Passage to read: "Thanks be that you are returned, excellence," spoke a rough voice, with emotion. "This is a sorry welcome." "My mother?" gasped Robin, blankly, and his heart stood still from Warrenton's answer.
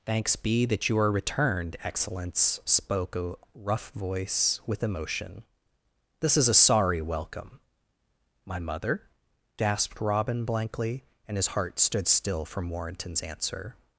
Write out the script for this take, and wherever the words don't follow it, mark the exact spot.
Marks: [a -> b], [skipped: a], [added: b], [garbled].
"Thanks be that you are returned, excellence," spoke a rough voice, with emotion. "This is a sorry welcome." "My mother?" gasped Robin, blankly, and his heart stood still from Warrenton's answer.